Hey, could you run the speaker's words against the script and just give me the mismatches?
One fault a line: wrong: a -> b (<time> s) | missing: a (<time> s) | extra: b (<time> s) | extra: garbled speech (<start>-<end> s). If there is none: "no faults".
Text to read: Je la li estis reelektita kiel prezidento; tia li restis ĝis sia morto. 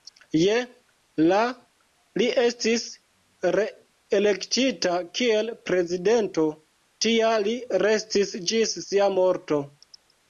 no faults